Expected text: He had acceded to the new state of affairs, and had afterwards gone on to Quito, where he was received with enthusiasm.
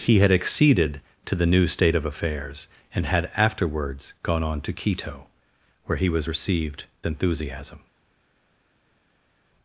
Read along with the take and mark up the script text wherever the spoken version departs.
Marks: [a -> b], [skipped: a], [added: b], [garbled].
He had acceded to the new state of affairs, and had afterwards gone on to Quito, where he was received [skipped: with] enthusiasm.